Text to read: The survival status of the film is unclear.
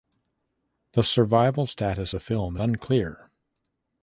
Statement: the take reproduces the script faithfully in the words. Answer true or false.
false